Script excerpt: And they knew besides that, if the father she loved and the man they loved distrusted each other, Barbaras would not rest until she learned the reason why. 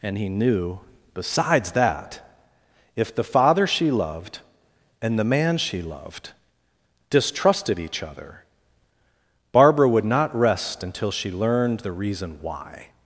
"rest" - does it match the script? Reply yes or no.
yes